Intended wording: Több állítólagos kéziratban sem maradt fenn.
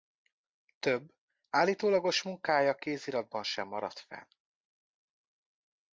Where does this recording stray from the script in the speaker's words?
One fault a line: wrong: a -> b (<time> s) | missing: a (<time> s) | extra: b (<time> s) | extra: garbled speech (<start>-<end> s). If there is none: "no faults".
extra: munkája (2.2 s)